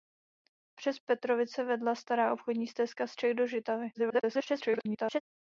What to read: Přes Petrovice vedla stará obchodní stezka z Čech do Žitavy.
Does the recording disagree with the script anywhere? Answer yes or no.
yes